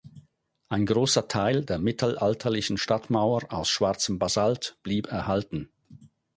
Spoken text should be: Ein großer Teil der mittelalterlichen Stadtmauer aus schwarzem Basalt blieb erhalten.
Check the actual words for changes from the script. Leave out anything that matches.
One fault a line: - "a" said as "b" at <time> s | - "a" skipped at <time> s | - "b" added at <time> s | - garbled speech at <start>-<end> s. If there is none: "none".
none